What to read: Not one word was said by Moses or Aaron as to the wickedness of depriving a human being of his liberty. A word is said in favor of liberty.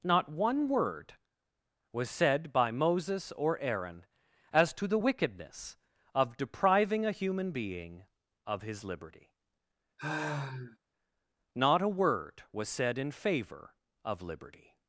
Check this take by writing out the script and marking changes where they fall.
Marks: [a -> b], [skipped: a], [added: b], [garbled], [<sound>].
Not one word was said by Moses or Aaron as to the wickedness of depriving a human being of his liberty. [sigh] [added: Not] A word [is -> was] said in favor of liberty.